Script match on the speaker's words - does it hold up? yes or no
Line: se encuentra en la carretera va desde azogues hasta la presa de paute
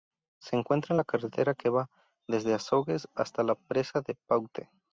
no